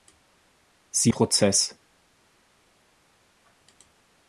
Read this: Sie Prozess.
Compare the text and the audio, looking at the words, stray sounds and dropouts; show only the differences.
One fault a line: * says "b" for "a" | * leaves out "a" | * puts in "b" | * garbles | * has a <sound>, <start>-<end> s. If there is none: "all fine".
all fine